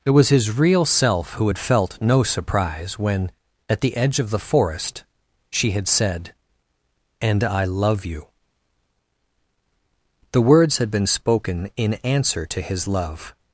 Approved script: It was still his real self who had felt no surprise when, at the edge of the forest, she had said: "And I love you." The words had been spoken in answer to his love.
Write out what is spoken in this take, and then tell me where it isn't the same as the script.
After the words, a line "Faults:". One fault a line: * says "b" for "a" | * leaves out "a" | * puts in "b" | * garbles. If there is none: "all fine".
It was his real self who had felt no surprise when, at the edge of the forest, she had said: "And I love you." The words had been spoken in answer to his love.
Faults:
* leaves out "still"